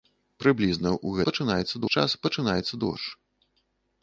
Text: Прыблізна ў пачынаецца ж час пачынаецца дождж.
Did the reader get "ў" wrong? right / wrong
right